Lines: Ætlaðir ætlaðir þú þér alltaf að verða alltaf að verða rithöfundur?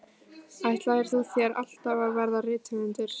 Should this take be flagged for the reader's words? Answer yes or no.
yes